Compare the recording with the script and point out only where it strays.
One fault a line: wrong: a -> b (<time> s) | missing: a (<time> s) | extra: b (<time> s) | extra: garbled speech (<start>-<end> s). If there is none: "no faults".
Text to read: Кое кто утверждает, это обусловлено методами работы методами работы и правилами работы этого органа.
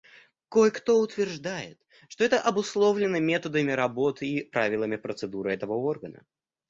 extra: что (2.1 s)
missing: методами работы (4.3 s)
wrong: работы -> процедуры (5.0 s)